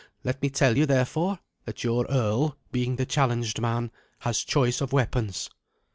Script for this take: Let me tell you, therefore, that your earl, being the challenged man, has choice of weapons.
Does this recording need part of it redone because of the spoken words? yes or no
no